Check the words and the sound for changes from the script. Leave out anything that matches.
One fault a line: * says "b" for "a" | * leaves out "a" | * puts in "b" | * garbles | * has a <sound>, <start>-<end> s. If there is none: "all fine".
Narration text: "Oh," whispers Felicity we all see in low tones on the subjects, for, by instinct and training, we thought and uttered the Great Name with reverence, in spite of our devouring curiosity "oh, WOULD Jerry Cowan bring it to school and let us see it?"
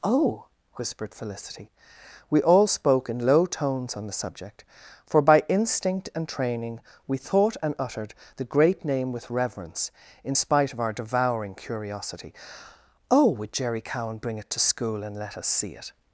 * says "whispered" for "whispers"
* says "spoke" for "see"
* says "subject" for "subjects"